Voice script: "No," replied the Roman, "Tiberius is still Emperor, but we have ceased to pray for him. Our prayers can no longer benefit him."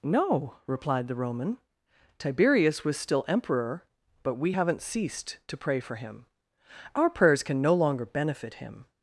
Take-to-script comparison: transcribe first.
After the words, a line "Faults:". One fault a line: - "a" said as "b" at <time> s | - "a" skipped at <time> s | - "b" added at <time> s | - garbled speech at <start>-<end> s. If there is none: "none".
"No," replied the Roman, "Tiberius was still Emperor, but we haven't ceased to pray for him. Our prayers can no longer benefit him."
Faults:
- "is" said as "was" at 2.8 s
- "have" said as "haven't" at 4.5 s